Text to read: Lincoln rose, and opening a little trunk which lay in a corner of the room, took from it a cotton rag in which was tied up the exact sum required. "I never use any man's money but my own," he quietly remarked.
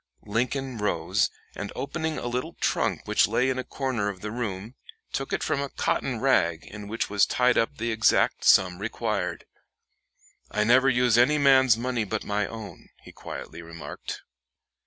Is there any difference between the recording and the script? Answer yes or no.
no